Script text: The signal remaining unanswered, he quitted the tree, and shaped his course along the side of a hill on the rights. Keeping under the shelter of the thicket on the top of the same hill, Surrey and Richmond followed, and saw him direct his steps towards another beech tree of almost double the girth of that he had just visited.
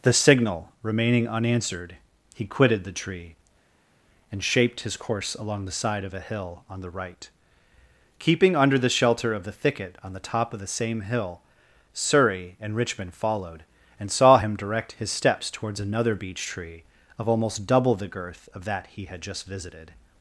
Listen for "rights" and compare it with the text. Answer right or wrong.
wrong